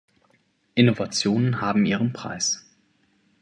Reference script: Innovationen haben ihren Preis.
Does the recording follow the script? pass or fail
pass